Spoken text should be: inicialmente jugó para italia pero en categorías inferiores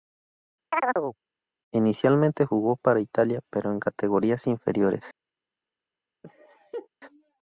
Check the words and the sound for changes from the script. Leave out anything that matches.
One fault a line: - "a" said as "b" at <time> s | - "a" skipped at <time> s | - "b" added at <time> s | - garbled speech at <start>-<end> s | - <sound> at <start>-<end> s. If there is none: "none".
- chirp at 0.7-1.2 s
- laugh at 6.2-6.9 s